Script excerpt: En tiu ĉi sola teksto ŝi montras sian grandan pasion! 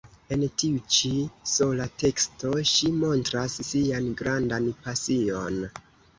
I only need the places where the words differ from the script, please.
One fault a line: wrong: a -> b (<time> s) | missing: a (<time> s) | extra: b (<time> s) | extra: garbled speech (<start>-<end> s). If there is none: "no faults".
no faults